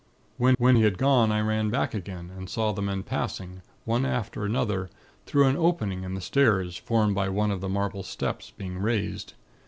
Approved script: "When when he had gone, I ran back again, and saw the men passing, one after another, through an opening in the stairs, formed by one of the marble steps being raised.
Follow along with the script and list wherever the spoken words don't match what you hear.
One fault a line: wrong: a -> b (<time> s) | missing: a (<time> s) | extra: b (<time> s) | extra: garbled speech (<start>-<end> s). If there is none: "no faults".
no faults